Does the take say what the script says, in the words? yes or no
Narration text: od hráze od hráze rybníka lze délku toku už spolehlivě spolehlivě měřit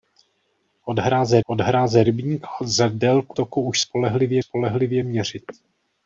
yes